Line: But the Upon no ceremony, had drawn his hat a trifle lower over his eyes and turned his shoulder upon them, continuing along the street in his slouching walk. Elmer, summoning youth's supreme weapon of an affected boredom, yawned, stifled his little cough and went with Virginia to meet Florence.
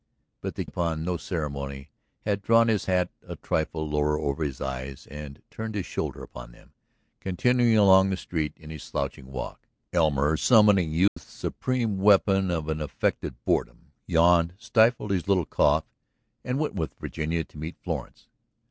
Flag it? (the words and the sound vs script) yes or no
yes